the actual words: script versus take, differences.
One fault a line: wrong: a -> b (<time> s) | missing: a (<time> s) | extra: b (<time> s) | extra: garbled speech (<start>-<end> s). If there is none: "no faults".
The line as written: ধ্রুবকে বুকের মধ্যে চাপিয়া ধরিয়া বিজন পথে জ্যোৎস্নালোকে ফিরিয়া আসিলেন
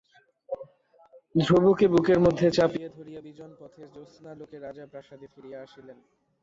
extra: রাজা প্রাসাদে (4.6 s)